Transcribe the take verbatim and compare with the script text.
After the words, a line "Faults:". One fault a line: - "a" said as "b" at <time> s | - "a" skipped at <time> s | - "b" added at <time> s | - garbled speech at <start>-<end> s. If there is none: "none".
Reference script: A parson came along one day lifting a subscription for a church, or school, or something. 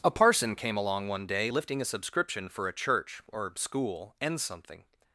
A parson came along one day lifting a subscription for a church, or school, and something.
Faults:
- "or" said as "and" at 4.2 s